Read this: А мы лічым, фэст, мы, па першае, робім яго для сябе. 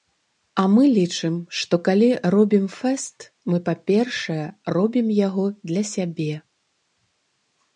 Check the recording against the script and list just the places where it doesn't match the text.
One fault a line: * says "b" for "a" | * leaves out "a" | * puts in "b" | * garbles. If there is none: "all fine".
* puts in "што калі робім"